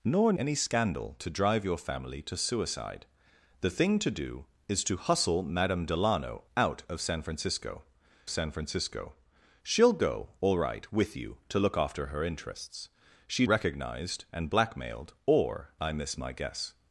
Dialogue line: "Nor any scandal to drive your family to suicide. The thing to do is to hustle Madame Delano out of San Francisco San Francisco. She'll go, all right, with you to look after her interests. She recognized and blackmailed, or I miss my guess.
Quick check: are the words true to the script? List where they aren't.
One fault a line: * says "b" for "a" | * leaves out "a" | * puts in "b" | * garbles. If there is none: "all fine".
all fine